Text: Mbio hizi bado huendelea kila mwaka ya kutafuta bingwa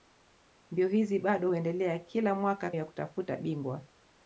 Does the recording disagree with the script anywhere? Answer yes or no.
no